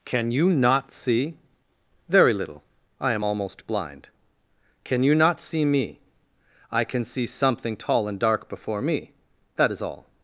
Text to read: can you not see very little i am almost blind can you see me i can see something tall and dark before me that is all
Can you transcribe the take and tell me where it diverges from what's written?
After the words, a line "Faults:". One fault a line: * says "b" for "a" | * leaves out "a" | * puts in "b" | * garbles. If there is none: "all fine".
can you not see very little i am almost blind can you not see me i can see something tall and dark before me that is all
Faults:
* puts in "not"